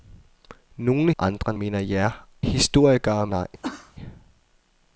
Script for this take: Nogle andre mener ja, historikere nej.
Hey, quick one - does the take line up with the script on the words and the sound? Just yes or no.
no